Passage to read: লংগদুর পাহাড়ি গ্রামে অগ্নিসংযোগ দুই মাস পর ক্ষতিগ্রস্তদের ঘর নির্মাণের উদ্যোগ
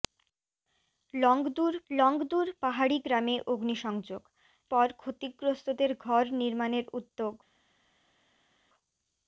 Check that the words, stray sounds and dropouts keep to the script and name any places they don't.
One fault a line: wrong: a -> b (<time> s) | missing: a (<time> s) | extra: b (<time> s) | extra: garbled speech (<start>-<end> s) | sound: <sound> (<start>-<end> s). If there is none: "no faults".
extra: লংগদুর (1.9 s)
missing: দুই মাস (4.2 s)